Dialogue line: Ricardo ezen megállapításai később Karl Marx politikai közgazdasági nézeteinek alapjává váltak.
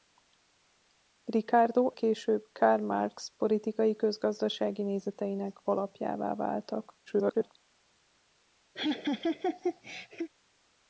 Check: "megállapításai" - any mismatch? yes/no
yes